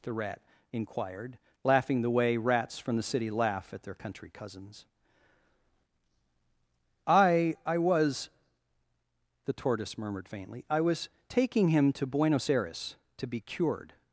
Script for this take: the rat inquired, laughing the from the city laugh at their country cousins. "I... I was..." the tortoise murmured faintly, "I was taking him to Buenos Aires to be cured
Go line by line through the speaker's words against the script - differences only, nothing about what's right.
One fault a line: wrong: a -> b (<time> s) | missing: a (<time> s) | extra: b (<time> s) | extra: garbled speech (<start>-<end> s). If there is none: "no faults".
extra: way rats (2.1 s)